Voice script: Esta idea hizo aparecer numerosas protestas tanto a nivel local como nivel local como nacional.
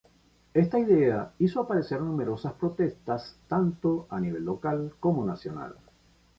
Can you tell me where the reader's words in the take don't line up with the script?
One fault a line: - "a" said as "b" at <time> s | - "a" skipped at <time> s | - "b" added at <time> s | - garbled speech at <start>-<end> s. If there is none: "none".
- "nivel local como" skipped at 5.3 s